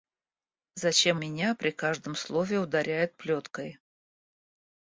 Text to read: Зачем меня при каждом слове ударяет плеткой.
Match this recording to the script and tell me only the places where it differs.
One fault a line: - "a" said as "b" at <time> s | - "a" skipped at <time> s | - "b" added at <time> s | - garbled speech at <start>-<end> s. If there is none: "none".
none